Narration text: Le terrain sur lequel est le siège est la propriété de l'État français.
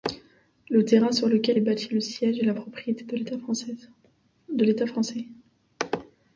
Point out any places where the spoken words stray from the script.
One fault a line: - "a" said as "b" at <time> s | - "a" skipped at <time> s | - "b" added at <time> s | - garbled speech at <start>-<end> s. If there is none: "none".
- "bâti" added at 1.6 s